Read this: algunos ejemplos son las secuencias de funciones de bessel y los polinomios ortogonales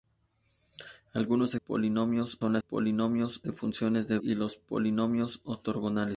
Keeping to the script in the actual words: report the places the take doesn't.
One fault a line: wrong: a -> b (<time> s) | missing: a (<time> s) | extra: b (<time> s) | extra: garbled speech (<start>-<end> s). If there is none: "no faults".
wrong: ejemplos -> polinomios (1.5 s)
wrong: secuencias -> polinomios (2.6 s)
missing: bessel (4.2 s)